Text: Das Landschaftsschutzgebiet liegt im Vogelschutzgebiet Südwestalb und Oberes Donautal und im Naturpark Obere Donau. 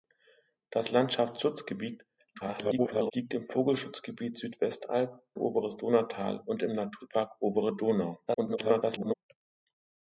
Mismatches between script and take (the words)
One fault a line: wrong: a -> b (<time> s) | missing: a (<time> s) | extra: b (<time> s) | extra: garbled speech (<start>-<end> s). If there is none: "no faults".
extra: garbled speech (2.3-3.1 s)
missing: und (5.2 s)
extra: garbled speech (8.3-9.2 s)